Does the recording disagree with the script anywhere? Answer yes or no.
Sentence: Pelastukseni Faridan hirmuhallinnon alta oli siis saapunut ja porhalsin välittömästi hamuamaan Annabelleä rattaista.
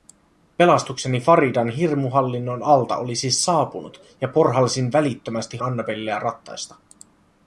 yes